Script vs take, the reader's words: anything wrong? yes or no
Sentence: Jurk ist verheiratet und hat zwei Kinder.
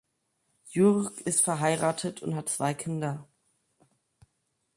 no